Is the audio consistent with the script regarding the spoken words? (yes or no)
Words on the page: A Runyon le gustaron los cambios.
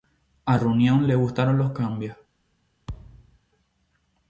yes